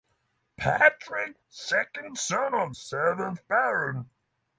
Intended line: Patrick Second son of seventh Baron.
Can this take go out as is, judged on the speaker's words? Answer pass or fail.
pass